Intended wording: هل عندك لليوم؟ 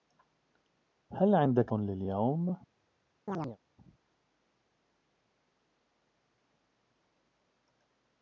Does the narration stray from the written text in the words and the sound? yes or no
yes